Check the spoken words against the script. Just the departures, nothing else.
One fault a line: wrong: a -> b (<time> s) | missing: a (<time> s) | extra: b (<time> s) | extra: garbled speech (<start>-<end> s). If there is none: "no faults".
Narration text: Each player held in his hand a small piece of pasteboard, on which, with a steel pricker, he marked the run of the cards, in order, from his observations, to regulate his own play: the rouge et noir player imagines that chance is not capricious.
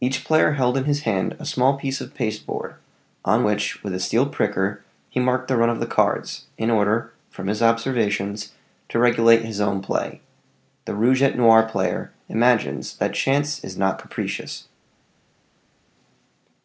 no faults